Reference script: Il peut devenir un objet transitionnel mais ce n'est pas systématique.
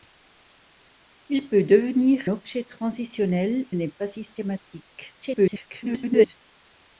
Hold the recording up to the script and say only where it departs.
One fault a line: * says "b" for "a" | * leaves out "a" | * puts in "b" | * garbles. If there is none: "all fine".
* leaves out "un"
* leaves out "mais ce"
* garbles